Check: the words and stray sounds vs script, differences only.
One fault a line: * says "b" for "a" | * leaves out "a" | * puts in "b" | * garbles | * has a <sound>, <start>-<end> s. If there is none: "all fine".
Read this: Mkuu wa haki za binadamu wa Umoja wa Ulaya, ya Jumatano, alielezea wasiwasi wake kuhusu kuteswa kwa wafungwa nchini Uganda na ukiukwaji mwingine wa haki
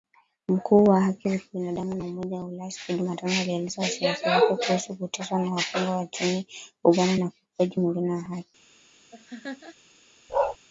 * puts in "siku"
* has a laugh, 9.1-9.8 s
* has a bark, 10.3-10.6 s